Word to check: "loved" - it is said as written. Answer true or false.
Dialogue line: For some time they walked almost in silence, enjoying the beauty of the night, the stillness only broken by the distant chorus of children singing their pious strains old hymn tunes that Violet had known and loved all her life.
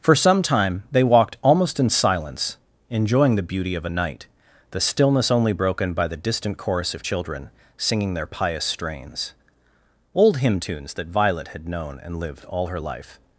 false